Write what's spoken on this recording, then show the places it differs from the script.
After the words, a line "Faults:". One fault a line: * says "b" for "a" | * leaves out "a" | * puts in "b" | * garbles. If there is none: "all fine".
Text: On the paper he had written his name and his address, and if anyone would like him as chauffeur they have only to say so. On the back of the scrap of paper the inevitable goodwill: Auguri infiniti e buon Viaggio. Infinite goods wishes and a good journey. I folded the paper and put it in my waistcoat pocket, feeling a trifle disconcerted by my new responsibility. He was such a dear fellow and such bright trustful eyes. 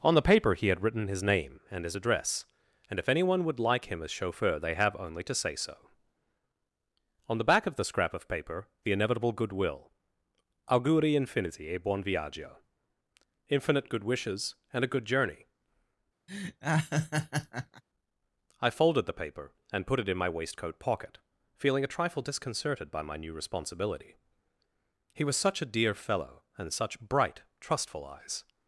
On the paper he had written his name and his address, and if anyone would like him as chauffeur they have only to say so. On the back of the scrap of paper the inevitable goodwill: Auguri infiniti e buon Viaggio. Infinite good wishes and a good journey. I folded the paper and put it in my waistcoat pocket, feeling a trifle disconcerted by my new responsibility. He was such a dear fellow and such bright trustful eyes.
Faults:
* says "good" for "goods"